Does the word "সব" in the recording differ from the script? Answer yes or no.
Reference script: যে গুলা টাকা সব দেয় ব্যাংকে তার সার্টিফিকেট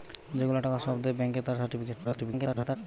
no